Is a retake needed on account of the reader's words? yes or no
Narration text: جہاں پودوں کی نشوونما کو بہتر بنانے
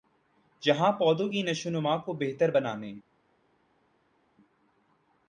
no